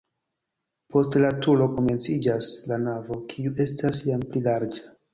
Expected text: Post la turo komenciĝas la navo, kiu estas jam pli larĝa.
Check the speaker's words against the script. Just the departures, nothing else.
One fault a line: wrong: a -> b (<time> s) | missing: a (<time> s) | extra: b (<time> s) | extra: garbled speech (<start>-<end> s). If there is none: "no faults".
no faults